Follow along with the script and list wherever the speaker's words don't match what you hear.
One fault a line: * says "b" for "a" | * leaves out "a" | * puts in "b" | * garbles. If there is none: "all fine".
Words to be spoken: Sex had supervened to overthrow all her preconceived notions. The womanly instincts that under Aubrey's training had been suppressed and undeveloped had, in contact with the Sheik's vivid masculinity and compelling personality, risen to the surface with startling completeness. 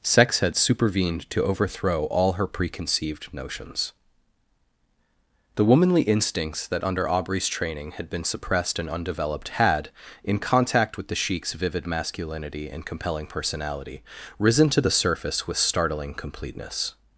all fine